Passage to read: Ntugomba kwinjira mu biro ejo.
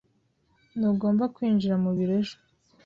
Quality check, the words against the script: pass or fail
pass